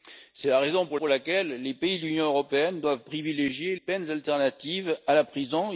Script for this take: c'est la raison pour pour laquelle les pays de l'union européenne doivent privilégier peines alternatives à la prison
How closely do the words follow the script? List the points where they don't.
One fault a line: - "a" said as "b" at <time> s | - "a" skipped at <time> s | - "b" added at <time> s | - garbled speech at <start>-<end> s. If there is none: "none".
none